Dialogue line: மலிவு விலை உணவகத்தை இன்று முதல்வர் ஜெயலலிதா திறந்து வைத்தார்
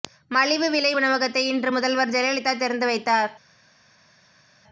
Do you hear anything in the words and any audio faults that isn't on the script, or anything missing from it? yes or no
no